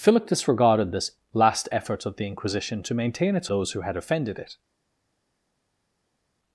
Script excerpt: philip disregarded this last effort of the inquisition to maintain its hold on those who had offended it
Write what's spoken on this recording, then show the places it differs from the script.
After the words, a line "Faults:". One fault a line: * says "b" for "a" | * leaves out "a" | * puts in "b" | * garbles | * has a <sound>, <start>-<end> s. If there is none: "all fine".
philip disregarded this last effort of the inquisition to maintain its those who had offended it
Faults:
* leaves out "hold on"